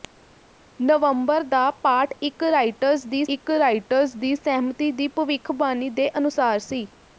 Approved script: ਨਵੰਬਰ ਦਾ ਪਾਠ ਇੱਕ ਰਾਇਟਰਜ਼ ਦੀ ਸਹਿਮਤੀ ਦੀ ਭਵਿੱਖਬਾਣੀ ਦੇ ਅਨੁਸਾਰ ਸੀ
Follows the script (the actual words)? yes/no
no